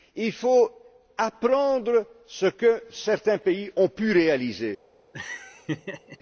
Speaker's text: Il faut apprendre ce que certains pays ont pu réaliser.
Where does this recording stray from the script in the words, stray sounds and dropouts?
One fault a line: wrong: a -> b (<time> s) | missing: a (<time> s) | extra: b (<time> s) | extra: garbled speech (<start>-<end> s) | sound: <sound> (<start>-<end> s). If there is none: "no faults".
sound: laugh (5.1-6.2 s)